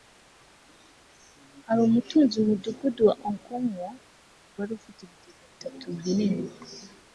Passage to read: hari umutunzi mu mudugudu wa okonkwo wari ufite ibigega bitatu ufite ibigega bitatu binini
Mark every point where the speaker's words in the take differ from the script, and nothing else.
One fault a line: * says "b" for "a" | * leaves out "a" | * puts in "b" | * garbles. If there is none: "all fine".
* leaves out "ufite ibigega bitatu"